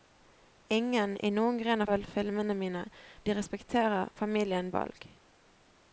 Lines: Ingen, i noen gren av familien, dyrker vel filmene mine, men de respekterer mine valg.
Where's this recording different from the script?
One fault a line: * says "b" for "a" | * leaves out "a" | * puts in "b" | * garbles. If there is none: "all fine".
* leaves out "familien dyrker"
* leaves out "men"
* says "familien" for "mine"